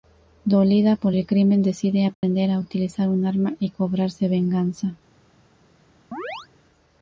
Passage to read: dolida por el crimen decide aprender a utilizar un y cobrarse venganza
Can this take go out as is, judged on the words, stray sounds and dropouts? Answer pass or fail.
fail